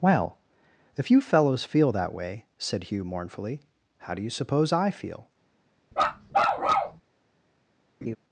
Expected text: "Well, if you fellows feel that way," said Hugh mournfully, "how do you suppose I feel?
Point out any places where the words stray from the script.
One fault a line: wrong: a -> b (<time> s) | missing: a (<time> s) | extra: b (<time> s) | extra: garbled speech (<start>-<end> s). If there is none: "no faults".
no faults